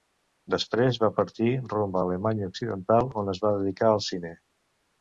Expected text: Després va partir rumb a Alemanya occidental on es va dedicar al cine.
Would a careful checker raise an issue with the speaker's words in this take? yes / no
no